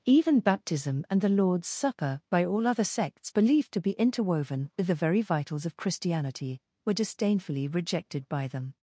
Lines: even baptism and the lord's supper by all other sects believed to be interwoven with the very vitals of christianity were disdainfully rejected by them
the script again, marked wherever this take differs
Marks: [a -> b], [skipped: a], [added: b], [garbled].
even baptism and the lord's supper by all other sects believed to be interwoven with the very vitals of christianity were disdainfully rejected by them